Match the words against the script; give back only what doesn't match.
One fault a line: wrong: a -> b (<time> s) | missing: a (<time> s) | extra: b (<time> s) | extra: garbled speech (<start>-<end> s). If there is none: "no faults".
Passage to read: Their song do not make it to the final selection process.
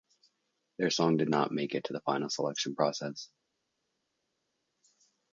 wrong: do -> did (1.2 s)